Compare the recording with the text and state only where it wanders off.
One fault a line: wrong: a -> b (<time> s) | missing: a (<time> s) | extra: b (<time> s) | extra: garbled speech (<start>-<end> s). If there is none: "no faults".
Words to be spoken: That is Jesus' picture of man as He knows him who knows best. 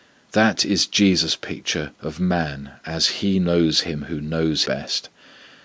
no faults